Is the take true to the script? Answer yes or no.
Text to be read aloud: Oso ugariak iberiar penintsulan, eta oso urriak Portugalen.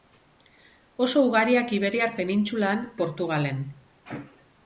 no